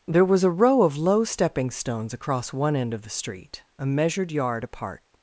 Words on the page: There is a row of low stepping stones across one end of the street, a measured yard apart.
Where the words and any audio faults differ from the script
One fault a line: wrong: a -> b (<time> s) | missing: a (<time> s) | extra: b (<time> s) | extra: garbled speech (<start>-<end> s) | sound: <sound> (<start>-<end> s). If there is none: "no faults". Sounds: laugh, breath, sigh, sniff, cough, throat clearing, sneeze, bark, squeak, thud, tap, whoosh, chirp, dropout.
wrong: is -> was (0.2 s)